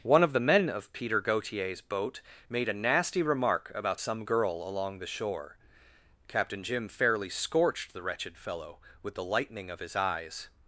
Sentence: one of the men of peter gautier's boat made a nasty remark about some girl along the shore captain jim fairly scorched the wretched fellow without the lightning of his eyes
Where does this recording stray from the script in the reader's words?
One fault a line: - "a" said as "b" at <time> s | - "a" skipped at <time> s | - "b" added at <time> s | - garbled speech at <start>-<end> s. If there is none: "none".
- "without" said as "with" at 9.0 s